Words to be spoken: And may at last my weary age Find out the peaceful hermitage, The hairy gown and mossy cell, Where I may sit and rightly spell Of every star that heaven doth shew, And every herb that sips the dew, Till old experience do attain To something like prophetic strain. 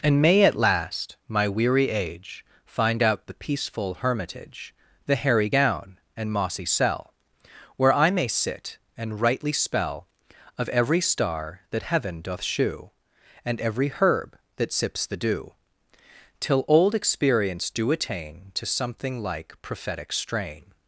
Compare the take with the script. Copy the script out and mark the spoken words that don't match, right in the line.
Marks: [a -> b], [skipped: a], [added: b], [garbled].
And may at last my weary age Find out the peaceful hermitage, The hairy gown and mossy cell, Where I may sit and rightly spell Of every star that heaven doth shew, And every herb that sips the dew, Till old experience do attain To something like prophetic strain.